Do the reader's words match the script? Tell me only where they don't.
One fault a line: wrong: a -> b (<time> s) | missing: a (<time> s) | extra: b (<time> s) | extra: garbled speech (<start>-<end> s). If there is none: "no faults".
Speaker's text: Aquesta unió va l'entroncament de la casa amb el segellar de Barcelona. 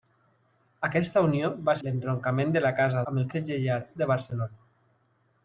no faults